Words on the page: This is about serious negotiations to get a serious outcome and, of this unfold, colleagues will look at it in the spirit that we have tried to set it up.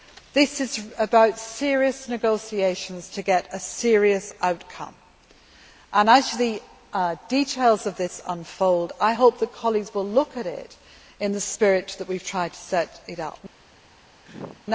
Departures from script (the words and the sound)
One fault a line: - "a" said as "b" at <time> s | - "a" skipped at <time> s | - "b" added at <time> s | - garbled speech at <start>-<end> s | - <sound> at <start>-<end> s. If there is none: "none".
- "as the details" added at 6.1 s
- "I hope that" added at 9.0 s
- sneeze at 14.3-14.7 s